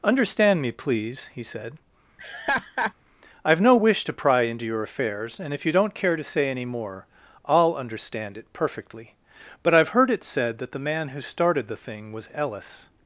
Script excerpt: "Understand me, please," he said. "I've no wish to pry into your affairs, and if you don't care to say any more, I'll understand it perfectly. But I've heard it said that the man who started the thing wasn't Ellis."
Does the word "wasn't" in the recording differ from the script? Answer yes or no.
yes